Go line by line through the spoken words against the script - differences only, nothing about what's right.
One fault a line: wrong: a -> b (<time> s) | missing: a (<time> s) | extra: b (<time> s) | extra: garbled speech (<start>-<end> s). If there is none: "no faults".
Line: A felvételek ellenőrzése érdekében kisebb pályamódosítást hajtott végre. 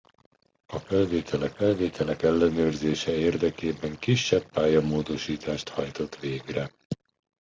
extra: felvételek (1.5 s)